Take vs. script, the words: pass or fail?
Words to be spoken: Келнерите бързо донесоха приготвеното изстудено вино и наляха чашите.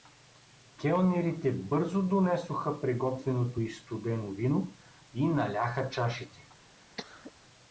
pass